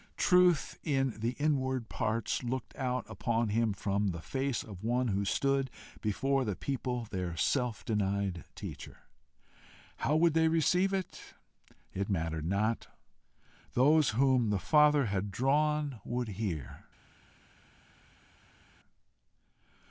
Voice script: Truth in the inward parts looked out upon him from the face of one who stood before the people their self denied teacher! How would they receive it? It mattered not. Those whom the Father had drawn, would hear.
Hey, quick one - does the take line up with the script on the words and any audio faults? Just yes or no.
yes